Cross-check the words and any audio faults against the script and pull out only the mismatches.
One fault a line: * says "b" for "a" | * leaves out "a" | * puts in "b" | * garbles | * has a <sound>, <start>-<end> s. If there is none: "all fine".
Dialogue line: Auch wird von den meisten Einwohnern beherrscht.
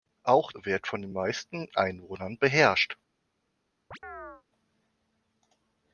* has a chirp, 3.9-4.4 s